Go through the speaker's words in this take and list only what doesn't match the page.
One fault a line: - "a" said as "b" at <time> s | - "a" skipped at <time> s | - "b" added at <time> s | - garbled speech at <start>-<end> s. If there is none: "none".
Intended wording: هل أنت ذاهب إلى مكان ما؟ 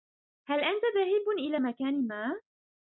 none